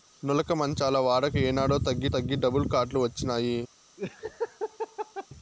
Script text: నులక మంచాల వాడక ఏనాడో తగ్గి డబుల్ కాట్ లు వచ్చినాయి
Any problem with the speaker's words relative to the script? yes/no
yes